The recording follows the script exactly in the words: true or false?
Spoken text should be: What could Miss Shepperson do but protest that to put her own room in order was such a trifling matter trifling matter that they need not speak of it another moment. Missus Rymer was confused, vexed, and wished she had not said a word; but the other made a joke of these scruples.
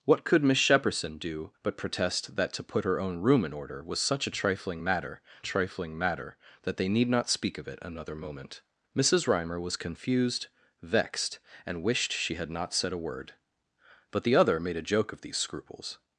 true